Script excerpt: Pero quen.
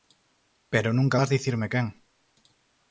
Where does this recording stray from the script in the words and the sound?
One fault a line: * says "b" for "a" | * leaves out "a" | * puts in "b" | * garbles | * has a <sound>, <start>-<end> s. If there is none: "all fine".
* puts in "nunca vas dicirme"